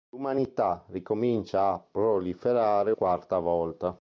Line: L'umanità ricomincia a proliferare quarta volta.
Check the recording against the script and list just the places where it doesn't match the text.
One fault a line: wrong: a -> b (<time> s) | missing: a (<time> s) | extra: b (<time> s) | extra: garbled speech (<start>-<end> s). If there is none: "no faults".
no faults